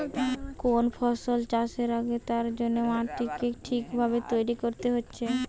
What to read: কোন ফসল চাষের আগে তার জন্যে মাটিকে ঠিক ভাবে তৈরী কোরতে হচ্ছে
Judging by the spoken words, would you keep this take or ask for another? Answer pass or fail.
pass